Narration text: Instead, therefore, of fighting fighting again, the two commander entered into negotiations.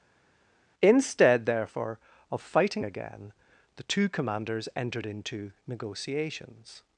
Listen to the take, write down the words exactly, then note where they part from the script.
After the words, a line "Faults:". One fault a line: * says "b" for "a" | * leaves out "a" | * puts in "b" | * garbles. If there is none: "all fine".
Instead, therefore, of fighting again, the two commanders entered into negotiations.
Faults:
* leaves out "fighting"
* says "commanders" for "commander"